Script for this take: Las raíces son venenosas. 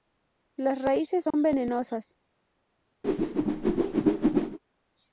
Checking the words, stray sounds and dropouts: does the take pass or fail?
fail